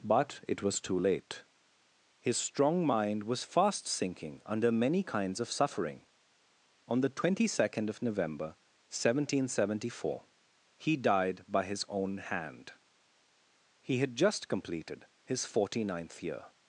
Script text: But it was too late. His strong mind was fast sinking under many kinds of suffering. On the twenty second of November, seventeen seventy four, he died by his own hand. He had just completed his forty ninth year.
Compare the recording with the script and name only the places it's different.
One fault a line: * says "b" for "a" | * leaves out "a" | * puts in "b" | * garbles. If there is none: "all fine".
all fine